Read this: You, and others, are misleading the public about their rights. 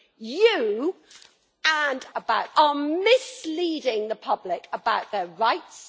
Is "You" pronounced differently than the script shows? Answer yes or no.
no